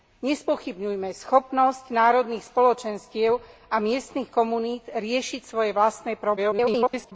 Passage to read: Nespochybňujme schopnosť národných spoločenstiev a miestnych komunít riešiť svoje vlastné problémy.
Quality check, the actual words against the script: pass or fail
fail